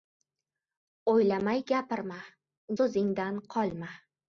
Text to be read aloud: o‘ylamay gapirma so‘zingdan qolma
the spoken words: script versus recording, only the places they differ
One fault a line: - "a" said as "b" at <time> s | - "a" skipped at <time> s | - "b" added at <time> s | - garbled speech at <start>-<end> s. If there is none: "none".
none